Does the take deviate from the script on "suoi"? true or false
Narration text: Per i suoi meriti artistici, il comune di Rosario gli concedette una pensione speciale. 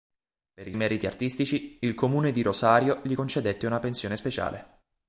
true